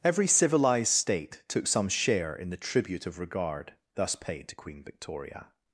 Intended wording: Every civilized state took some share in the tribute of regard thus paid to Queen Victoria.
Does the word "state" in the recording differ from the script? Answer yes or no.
no